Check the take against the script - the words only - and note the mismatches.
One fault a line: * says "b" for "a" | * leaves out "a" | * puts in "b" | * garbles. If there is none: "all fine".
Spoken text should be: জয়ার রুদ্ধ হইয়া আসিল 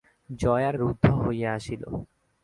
all fine